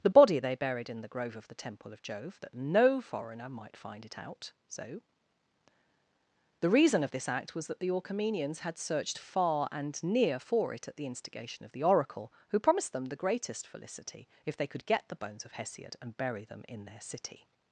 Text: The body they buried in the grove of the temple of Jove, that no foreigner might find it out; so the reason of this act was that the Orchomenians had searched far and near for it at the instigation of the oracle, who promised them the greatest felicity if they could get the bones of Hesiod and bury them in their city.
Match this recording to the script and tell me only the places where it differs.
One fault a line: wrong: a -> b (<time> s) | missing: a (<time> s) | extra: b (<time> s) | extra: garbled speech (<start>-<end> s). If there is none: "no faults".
no faults